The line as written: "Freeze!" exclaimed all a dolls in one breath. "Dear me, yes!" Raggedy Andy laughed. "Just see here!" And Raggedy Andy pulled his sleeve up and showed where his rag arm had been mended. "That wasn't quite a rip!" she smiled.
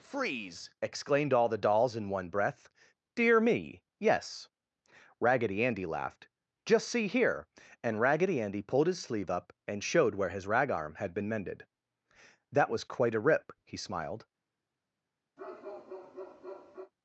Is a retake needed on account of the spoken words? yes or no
yes